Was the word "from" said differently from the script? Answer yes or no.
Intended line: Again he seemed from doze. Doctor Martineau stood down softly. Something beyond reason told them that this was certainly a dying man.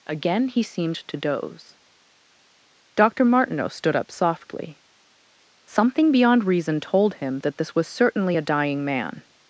yes